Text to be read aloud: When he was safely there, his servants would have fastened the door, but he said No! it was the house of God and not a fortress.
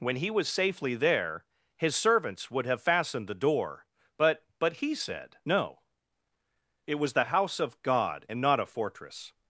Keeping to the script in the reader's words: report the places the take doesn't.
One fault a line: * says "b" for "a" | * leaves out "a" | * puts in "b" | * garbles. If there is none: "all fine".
* puts in "but"